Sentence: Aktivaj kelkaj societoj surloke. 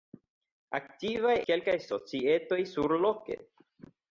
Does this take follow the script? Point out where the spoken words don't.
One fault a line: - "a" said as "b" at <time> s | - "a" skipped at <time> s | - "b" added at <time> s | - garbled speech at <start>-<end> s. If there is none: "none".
none